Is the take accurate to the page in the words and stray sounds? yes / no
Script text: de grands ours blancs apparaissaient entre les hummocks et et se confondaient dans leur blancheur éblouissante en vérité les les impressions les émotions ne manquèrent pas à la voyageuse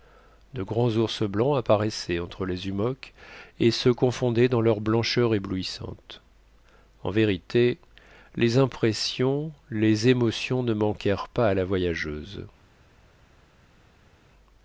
no